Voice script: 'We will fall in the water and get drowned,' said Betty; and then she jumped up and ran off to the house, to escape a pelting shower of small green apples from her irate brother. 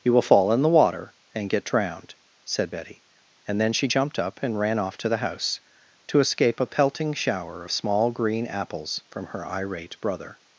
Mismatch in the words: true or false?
true